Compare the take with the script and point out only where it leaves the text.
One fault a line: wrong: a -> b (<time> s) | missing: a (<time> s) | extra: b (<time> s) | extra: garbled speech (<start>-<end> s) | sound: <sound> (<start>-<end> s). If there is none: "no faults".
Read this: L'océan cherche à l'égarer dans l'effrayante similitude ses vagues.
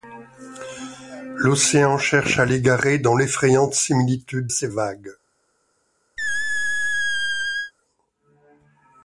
sound: squeak (6.2-7.7 s)